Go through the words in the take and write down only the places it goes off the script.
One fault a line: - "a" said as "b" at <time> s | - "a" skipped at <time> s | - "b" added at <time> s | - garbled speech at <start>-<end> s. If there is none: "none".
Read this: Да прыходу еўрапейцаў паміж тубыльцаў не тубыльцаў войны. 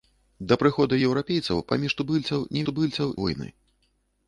none